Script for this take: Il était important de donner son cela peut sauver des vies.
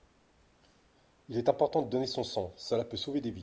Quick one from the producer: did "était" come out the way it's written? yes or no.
no